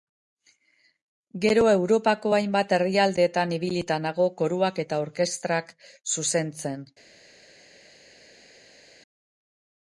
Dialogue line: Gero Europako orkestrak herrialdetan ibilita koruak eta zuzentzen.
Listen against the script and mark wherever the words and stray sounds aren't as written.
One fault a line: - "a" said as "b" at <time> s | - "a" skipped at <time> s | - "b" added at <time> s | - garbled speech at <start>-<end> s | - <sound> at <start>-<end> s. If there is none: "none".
- "orkestrak" said as "hainbat" at 2.4 s
- "nago" added at 4.1 s
- "orkestrak" added at 5.1 s